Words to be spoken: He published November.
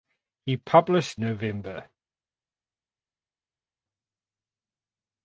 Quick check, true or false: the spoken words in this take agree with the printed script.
true